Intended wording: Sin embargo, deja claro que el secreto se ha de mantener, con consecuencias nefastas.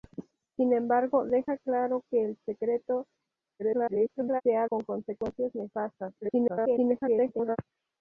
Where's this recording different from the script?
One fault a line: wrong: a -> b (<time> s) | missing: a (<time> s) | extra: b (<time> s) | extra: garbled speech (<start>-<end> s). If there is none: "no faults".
extra: garbled speech (3.6-4.4 s)
missing: de mantener (4.7 s)
extra: garbled speech (6.2-7.6 s)